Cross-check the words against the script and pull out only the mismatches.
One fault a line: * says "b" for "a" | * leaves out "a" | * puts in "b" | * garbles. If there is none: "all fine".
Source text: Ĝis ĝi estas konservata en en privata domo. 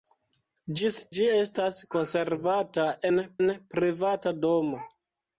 all fine